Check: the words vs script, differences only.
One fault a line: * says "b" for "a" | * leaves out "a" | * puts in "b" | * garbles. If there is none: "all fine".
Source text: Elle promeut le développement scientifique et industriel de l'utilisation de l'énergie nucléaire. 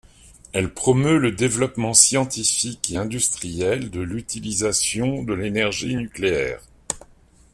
all fine